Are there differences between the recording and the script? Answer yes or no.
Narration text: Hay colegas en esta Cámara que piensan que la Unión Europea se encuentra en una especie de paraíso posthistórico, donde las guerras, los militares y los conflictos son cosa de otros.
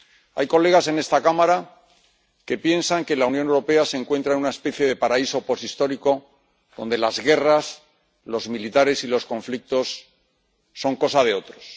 no